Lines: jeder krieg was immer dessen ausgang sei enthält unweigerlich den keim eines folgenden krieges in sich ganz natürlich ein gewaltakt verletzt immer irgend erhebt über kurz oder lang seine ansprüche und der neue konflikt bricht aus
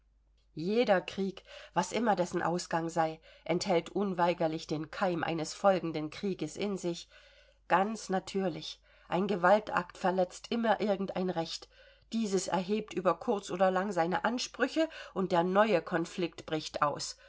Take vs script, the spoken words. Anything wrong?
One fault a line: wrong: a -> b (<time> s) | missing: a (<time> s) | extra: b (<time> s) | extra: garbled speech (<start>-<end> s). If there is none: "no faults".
extra: ein recht dieses (11.2 s)